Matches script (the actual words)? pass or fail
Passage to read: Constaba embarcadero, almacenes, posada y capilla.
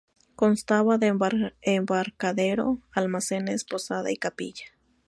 fail